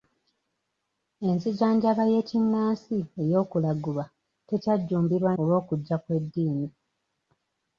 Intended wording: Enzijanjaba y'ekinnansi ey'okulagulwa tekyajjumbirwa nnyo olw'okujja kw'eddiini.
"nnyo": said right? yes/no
no